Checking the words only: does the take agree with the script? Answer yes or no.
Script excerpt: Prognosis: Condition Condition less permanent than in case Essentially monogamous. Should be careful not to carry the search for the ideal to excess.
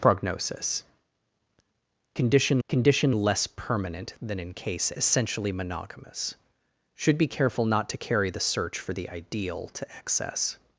yes